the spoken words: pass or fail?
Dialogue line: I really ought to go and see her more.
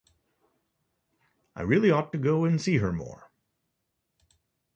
pass